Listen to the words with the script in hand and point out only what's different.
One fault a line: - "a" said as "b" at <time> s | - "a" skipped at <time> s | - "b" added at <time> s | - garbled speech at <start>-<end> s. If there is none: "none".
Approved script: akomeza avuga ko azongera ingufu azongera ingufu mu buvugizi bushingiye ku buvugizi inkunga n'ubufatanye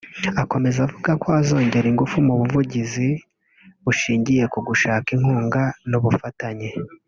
- "azongera ingufu" skipped at 2.2 s
- "buvugizi" said as "gushaka" at 4.7 s